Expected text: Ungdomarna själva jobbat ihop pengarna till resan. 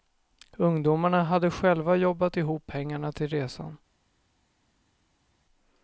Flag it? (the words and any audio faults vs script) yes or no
yes